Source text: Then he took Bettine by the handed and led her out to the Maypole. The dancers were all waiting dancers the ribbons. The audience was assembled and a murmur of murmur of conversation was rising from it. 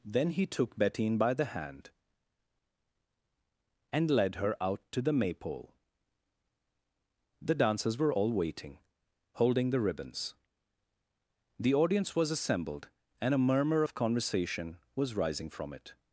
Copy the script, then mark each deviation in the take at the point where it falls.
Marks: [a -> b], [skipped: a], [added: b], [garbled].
Then he took Bettine by the [handed -> hand] and led her out to the Maypole. The dancers were all waiting [dancers -> holding] the ribbons. The audience was assembled and a murmur of [skipped: murmur of] conversation was rising from it.